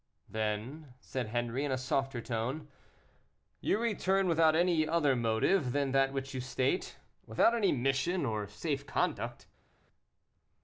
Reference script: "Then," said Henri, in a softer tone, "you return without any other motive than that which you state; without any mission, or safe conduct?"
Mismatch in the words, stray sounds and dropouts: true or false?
false